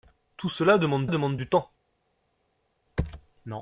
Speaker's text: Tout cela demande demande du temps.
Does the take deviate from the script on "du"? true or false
false